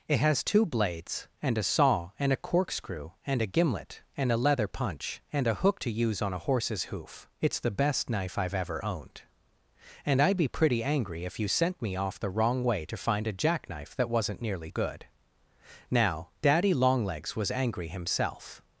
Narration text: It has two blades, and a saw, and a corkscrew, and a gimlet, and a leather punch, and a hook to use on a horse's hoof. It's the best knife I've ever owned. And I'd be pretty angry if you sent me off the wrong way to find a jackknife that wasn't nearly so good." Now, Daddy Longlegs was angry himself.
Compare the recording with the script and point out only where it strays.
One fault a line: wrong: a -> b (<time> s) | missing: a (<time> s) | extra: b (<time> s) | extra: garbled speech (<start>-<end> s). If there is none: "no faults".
missing: so (14.7 s)